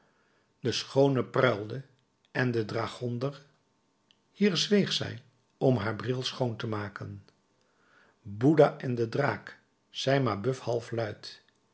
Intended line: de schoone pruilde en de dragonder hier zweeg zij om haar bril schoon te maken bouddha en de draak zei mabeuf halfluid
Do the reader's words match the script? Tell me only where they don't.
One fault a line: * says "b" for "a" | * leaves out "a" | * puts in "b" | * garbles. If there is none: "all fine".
all fine